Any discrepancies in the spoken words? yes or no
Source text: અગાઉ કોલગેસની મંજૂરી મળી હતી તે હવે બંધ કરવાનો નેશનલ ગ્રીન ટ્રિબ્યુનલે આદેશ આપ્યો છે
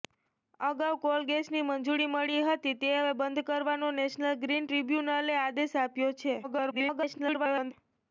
yes